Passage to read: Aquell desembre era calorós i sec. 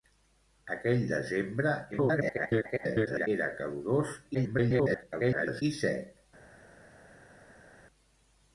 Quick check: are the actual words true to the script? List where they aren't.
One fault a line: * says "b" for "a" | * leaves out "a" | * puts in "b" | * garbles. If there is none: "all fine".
* garbles
* garbles